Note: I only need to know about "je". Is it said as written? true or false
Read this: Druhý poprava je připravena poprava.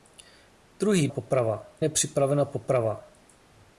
true